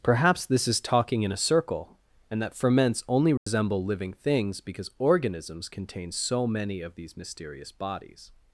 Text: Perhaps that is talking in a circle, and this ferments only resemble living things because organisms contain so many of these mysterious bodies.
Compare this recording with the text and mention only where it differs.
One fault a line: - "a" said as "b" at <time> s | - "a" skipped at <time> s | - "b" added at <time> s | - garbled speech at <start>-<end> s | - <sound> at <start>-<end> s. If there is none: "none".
- "that" said as "this" at 0.5 s
- "this" said as "that" at 2.4 s
- dropout at 3.4-3.5 s